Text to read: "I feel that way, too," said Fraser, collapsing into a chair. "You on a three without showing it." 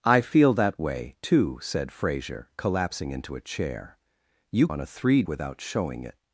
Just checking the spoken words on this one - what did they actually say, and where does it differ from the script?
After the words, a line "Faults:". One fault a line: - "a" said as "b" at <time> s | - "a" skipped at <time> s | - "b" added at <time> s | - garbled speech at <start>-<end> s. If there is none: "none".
"I feel that way, too," said Fraser, collapsing into a chair. "You on a three without showing it."
Faults:
none